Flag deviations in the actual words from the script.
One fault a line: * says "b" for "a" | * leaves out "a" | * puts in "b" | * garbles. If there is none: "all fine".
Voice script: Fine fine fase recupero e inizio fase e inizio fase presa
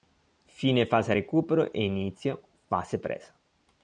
* leaves out "fine"
* leaves out "e inizio fase"